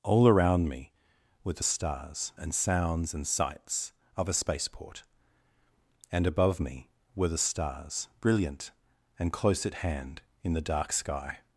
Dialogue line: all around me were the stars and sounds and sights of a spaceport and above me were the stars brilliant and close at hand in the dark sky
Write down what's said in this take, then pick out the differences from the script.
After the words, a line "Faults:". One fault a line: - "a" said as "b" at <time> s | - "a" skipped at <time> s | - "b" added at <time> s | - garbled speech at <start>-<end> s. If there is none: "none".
all around me were the stars and sounds and sights of a spaceport and above me were the stars brilliant and close at hand in the dark sky
Faults:
none